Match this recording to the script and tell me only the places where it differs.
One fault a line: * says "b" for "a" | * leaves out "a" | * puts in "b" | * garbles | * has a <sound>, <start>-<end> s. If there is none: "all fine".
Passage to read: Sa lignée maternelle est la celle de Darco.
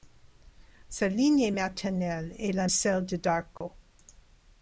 * has a dropout, 3.6-3.6 s